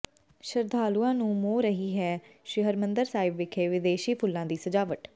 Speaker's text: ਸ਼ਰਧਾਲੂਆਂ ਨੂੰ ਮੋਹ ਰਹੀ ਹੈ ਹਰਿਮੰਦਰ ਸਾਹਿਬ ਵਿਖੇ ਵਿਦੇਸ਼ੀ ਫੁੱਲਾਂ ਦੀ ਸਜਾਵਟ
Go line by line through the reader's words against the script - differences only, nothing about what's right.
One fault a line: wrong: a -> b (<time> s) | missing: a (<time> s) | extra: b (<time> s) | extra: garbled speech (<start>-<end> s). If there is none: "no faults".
extra: ਸ੍ਰੀ (2.5 s)